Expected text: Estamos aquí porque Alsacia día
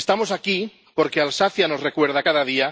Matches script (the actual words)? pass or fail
fail